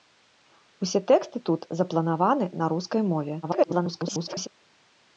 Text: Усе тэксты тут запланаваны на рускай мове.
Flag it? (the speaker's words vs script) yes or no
yes